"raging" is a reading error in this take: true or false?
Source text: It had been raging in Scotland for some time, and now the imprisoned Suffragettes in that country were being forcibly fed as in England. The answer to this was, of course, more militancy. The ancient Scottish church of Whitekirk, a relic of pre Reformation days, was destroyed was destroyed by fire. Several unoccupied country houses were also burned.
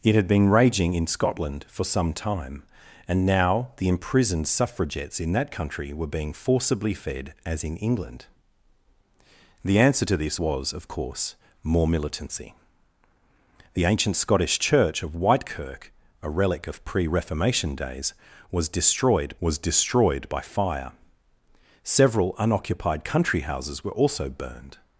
false